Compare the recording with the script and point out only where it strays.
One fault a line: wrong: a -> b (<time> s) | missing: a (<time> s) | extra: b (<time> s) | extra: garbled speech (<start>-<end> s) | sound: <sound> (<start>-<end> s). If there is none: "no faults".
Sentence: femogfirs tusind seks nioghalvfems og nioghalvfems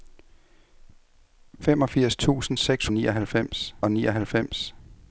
no faults